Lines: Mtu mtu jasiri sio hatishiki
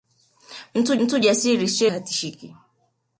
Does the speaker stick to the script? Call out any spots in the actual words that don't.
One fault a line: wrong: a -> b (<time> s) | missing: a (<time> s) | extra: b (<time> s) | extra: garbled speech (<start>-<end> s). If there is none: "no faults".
no faults